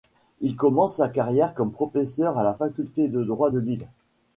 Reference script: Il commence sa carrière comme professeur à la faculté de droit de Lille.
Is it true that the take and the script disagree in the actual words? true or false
false